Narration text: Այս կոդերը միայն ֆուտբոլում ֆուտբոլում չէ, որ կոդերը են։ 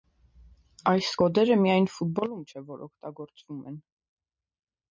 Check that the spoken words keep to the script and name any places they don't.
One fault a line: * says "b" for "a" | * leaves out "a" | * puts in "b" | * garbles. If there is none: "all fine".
* leaves out "ֆուտբոլում"
* says "օգտագործվում" for "կոդերը"